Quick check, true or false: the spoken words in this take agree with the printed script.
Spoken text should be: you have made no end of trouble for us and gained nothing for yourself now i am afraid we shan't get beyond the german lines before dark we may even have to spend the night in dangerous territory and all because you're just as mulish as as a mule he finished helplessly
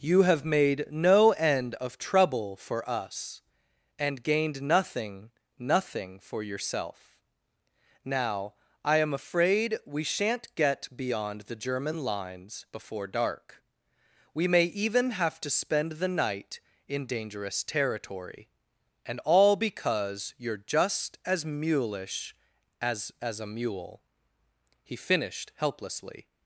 false